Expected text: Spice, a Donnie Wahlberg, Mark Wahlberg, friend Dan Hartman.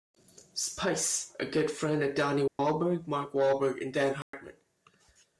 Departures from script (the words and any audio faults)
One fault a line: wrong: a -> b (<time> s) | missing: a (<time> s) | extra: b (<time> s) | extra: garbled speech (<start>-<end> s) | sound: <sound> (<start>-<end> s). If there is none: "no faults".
extra: good friend of (1.4 s)
sound: dropout (2.5-2.6 s)
wrong: friend -> and (3.8 s)
sound: dropout (4.2-4.3 s)